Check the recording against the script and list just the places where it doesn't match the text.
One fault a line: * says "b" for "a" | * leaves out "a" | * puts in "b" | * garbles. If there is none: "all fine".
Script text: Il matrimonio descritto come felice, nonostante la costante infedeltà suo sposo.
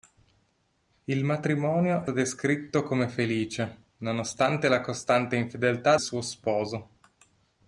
all fine